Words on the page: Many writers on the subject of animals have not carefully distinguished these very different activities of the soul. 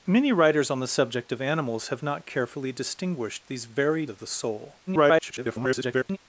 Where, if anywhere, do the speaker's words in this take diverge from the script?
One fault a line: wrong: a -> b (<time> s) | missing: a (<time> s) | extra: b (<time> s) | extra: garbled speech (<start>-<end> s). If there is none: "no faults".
missing: different activities (4.0 s)
extra: garbled speech (4.9-6.2 s)